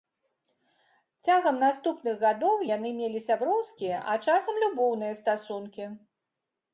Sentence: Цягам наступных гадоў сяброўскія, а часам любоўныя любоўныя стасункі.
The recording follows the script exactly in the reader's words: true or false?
false